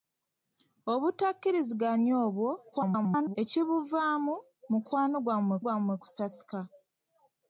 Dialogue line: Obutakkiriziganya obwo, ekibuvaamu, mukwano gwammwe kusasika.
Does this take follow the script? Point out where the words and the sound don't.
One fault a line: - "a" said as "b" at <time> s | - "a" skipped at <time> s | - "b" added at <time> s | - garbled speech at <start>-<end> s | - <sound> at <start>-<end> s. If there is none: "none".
- garbled speech at 2.7-3.4 s
- "gwammwe" added at 5.6 s